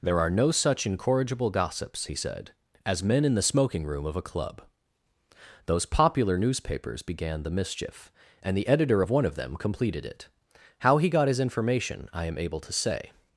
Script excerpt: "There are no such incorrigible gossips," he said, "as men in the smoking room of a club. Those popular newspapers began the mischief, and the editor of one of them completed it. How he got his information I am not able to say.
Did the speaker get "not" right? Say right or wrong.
wrong